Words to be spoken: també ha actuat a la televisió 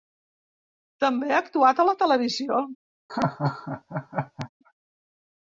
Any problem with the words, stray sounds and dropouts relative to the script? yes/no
yes